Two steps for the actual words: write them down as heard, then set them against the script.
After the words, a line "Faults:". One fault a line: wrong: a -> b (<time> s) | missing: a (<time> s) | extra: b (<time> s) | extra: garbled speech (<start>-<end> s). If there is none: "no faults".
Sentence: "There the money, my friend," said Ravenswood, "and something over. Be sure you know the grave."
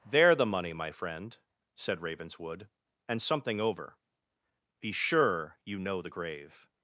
"There the money, my friend," said Ravenswood, "and something over. Be sure you know the grave."
Faults:
no faults